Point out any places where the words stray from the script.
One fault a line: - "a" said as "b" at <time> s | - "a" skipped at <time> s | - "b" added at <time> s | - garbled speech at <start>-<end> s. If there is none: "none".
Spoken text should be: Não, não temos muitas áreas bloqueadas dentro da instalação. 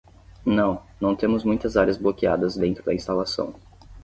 none